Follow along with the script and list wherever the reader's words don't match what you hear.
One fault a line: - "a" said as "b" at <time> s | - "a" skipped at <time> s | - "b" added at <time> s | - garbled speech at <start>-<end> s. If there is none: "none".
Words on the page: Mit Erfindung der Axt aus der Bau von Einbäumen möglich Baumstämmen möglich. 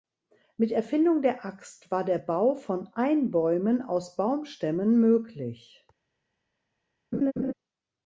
- "aus" said as "war" at 1.9 s
- "möglich" said as "aus" at 3.8 s